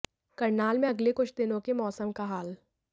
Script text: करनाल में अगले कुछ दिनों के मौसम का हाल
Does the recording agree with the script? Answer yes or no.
yes